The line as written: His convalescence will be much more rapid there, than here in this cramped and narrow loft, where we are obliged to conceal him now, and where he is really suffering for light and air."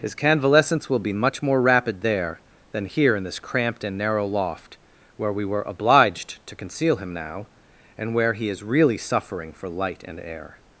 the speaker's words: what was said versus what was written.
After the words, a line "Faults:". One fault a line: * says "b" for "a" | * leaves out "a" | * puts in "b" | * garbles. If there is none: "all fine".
His convalescence will be much more rapid there, than here in this cramped and narrow loft, where we were obliged to conceal him now, and where he is really suffering for light and air."
Faults:
* says "were" for "are"